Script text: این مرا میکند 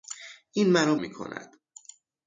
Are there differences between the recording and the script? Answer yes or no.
no